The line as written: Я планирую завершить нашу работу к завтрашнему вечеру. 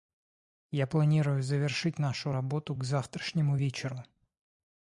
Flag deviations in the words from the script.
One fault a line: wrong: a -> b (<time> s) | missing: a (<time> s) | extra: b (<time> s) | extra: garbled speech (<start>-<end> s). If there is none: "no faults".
no faults